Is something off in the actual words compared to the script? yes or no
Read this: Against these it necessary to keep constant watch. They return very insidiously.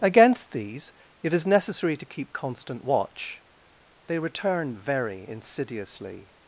yes